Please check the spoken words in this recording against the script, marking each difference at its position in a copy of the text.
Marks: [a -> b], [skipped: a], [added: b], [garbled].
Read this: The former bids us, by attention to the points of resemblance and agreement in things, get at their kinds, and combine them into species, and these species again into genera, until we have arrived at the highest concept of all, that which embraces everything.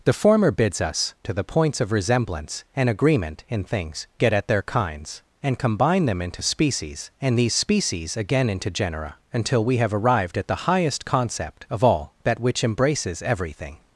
The former bids us, [skipped: by attention] to the points of resemblance and agreement in things, get at their kinds, and combine them into species, and these species again into genera, until we have arrived at the highest concept of all, that which embraces everything.